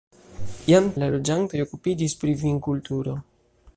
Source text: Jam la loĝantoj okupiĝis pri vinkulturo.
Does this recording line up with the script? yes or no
yes